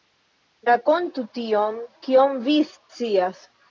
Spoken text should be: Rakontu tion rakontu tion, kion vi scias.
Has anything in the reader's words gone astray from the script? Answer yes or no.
yes